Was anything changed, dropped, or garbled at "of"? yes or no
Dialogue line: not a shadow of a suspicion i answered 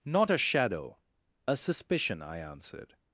yes